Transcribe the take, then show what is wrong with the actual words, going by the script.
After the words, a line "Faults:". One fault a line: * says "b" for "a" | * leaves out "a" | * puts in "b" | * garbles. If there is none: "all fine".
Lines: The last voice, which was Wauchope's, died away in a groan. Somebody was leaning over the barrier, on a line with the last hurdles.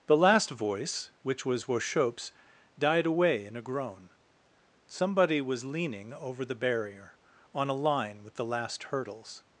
The last voice, which was Wauchope's, died away in a groan. Somebody was leaning over the barrier, on a line with the last hurdles.
Faults:
all fine